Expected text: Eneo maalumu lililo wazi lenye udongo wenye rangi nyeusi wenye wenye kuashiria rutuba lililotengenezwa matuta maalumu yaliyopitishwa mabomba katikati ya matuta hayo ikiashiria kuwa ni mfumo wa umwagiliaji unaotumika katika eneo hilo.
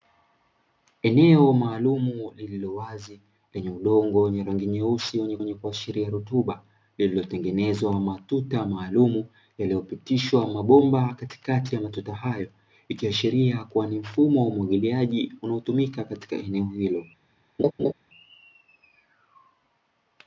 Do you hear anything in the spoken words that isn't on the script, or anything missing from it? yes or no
no